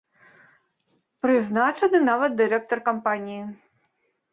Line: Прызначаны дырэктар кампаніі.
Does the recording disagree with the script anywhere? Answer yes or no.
yes